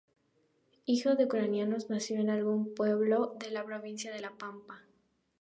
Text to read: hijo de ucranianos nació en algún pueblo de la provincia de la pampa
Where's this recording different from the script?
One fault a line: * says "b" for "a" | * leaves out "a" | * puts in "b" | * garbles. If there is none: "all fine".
all fine